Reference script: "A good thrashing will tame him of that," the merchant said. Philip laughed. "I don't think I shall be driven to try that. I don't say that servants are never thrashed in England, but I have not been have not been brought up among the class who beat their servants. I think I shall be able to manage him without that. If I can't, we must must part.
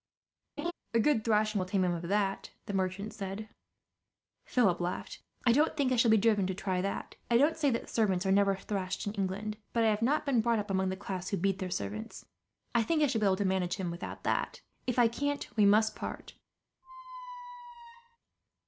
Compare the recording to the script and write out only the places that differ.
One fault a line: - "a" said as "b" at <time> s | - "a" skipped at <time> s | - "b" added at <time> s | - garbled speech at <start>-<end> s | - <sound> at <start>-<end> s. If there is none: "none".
- laugh at 0.6-0.7 s
- "have not been" skipped at 10.4 s
- "must" skipped at 16.0 s
- squeak at 16.8-18.2 s